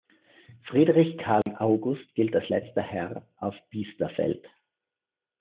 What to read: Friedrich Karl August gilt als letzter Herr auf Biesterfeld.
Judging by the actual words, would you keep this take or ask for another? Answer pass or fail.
pass